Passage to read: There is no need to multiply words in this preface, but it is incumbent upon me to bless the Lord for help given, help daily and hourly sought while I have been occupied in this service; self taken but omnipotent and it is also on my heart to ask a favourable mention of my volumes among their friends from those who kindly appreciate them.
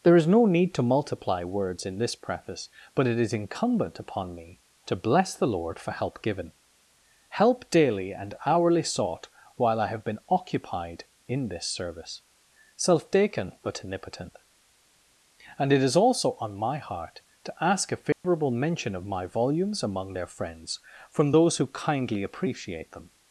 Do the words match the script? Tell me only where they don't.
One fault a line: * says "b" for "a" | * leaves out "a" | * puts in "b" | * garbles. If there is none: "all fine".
all fine